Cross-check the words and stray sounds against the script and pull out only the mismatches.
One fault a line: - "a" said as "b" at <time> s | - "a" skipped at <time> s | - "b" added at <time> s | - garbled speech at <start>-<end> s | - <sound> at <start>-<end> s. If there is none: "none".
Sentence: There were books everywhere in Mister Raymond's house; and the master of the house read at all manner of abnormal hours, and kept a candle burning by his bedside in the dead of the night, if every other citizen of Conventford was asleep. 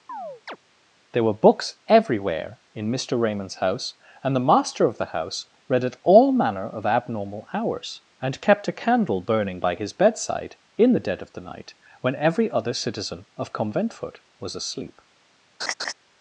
- chirp at 0.1-0.6 s
- "if" said as "when" at 12.0 s
- laugh at 15.6-15.9 s